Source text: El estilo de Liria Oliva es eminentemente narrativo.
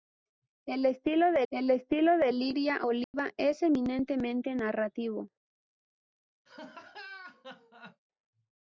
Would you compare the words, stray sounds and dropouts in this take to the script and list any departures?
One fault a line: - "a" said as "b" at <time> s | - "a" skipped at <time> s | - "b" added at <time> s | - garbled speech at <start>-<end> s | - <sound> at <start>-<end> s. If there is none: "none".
- "el estilo de" added at 1.5 s
- dropout at 3.0-3.1 s
- laugh at 6.5-8.0 s